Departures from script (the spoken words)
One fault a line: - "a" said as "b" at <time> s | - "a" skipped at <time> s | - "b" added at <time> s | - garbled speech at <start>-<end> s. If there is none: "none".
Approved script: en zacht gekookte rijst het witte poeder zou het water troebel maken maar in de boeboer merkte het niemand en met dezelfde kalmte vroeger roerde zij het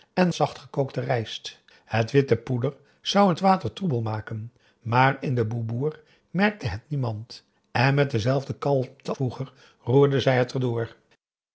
none